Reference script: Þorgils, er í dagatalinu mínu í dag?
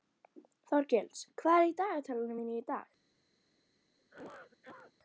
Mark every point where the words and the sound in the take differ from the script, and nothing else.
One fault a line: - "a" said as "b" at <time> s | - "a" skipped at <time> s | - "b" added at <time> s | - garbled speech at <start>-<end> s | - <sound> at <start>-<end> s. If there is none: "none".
- "hvað" added at 1.4 s
- cough at 4.0-4.9 s